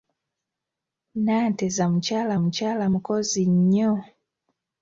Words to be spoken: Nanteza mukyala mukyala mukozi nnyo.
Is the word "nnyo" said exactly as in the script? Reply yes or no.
yes